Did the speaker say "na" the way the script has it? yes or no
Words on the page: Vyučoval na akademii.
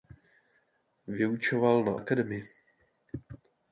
yes